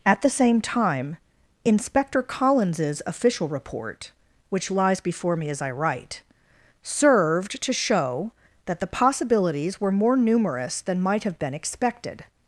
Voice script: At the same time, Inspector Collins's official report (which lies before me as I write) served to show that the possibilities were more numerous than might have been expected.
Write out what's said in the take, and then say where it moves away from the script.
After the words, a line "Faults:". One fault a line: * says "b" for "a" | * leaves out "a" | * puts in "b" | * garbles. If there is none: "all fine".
At the same time, Inspector Collins's official report (which lies before me as I write) served to show that the possibilities were more numerous than might have been expected.
Faults:
all fine